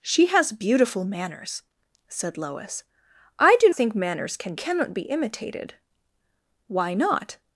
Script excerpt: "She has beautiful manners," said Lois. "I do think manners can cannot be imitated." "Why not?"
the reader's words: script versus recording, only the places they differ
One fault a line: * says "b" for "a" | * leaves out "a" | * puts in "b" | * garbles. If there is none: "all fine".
all fine